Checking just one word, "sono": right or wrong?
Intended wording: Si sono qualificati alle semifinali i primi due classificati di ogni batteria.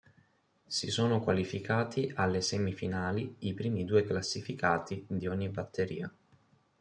right